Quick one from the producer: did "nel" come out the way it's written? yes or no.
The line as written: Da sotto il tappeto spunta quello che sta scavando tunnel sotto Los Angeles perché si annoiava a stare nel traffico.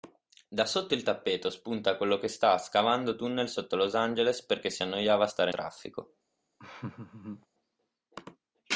no